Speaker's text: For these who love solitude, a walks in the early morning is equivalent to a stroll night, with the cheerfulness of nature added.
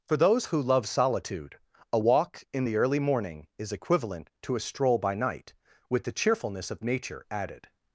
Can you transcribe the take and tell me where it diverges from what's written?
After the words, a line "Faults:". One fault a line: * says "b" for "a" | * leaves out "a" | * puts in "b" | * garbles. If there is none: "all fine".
For those who love solitude, a walk in the early morning is equivalent to a stroll by night, with the cheerfulness of nature added.
Faults:
* says "those" for "these"
* says "walk" for "walks"
* puts in "by"